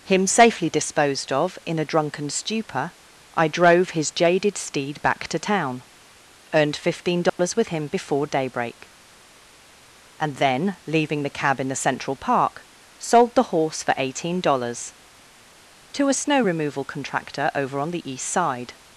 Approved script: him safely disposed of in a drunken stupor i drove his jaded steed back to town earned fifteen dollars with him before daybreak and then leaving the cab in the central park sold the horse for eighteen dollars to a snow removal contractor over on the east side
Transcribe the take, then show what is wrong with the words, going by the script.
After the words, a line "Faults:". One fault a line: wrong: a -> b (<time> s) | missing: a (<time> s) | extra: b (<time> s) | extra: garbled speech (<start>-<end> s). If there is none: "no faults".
him safely disposed of in a drunken stupor i drove his jaded steed back to town earned fifteen dollars with him before daybreak and then leaving the cab in the central park sold the horse for eighteen dollars to a snow removal contractor over on the east side
Faults:
no faults